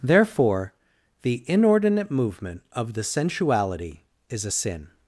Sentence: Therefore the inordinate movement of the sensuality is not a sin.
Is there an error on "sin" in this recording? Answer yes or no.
no